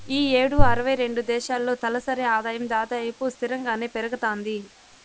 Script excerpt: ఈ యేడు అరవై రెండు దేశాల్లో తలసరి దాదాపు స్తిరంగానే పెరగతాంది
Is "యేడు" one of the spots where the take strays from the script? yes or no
no